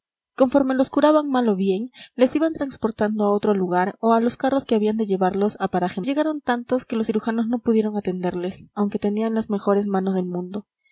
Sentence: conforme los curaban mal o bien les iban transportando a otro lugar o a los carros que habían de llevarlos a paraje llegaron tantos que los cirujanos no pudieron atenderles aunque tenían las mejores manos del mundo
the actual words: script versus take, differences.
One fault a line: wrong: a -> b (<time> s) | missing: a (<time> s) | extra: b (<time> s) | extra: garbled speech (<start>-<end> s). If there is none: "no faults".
no faults